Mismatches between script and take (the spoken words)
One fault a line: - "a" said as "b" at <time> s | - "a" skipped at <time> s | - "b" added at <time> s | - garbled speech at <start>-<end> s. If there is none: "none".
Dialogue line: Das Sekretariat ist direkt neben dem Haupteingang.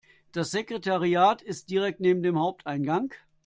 none